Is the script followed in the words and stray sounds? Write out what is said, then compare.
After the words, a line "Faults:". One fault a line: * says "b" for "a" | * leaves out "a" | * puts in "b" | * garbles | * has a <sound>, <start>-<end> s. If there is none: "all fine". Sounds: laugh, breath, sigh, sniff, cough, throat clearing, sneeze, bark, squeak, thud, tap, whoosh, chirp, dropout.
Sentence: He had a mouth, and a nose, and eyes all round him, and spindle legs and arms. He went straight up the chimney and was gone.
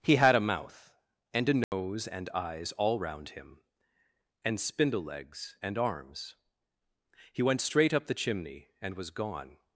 He had a mouth, and a nose, and eyes all round him, and spindle legs and arms. He went straight up the chimney and was gone.
Faults:
* has a dropout, 1.6-1.7 s